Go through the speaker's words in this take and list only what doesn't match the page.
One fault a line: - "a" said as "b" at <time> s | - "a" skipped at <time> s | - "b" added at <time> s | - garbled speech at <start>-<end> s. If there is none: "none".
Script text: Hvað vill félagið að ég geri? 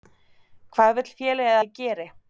- "að" skipped at 1.6 s